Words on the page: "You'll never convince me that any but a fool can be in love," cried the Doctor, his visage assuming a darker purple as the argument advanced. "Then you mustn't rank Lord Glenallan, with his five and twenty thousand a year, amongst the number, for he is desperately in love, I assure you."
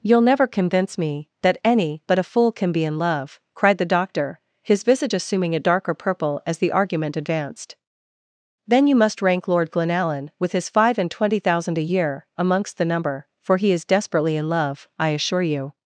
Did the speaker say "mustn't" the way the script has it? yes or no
no